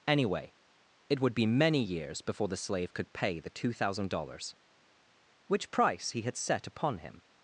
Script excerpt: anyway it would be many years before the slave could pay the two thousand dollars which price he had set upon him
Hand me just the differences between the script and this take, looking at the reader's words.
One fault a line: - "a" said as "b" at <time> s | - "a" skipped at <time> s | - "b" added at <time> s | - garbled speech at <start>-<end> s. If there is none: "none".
none